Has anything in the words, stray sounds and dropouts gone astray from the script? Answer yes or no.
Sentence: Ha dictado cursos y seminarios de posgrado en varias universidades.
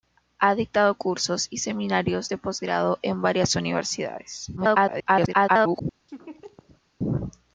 yes